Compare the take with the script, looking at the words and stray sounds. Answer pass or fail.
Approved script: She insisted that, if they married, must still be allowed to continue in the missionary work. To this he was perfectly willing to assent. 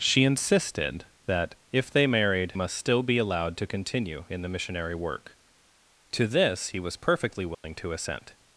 fail